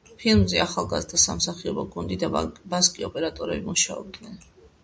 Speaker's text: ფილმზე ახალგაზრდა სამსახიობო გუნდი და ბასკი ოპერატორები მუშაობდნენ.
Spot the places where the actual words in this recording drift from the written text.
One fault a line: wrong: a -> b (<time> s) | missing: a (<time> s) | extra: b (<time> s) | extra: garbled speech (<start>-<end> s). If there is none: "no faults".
no faults